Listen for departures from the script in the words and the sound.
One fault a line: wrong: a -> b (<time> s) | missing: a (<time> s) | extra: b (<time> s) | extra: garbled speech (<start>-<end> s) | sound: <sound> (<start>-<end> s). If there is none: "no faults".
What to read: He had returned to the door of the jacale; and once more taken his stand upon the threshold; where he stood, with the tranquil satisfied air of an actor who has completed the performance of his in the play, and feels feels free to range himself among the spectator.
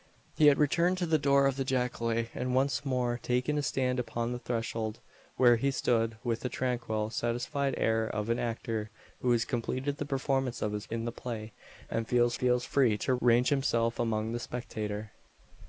no faults